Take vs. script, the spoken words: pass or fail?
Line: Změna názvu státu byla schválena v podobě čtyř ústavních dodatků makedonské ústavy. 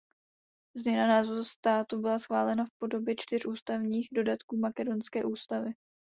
pass